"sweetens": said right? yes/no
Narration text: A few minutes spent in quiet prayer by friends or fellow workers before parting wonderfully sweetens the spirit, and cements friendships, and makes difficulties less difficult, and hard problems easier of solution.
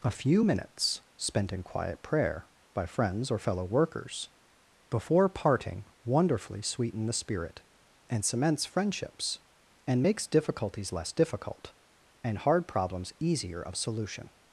no